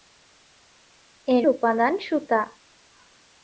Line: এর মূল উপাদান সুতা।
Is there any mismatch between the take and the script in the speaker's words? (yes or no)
yes